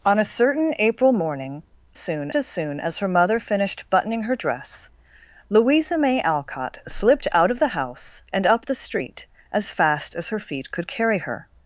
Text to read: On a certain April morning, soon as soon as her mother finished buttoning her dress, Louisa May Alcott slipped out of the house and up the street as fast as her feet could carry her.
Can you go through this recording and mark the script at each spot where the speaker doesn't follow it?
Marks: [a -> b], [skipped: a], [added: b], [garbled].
On a certain April morning, soon as soon as her mother finished buttoning her dress, Louisa May Alcott slipped out of the house and up the street as fast as her feet could carry her.